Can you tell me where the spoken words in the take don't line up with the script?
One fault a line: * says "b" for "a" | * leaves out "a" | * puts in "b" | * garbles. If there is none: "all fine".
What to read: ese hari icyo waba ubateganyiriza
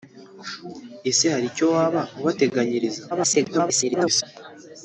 * garbles